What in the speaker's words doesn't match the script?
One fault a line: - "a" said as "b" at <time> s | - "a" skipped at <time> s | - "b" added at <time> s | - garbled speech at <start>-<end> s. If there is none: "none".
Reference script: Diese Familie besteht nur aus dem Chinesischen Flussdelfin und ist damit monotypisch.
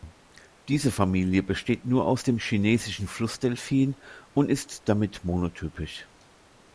none